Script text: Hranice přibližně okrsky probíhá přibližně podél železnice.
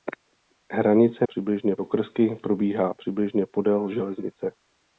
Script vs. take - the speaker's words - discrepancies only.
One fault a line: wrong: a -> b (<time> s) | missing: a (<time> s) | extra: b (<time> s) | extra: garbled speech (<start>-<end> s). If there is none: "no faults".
no faults